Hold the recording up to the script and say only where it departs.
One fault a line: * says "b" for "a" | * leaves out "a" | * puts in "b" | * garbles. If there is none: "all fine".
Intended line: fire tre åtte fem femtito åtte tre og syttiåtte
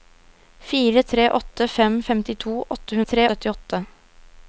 all fine